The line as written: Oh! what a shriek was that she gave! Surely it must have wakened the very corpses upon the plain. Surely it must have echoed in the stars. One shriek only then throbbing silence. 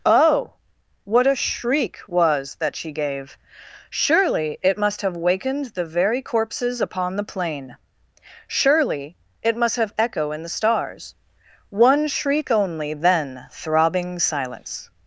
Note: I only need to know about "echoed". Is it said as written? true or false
false